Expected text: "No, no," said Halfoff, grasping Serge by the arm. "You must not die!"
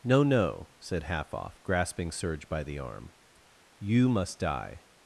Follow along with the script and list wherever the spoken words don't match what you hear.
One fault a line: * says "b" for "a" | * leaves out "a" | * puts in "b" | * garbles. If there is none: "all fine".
* leaves out "not"